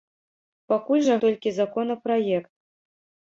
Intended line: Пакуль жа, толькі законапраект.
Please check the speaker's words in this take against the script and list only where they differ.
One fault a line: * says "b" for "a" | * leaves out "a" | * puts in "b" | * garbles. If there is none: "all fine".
all fine